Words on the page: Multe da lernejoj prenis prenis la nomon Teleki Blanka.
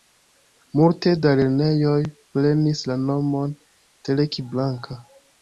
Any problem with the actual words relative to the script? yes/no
yes